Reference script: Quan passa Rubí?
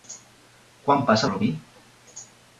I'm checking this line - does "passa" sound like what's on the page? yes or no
yes